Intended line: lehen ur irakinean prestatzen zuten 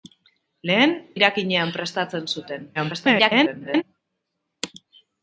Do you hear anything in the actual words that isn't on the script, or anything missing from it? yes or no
yes